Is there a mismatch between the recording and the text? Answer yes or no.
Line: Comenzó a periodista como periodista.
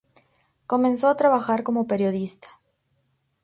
yes